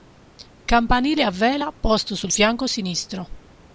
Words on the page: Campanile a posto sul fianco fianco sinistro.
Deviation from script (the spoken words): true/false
true